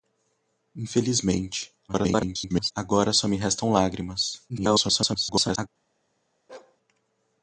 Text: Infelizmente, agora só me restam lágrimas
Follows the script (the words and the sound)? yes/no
no